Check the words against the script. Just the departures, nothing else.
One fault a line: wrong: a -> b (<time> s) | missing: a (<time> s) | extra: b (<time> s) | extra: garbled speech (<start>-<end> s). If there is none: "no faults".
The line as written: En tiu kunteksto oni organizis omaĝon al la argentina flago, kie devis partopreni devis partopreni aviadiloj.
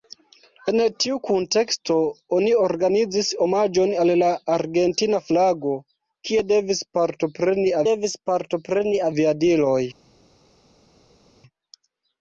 no faults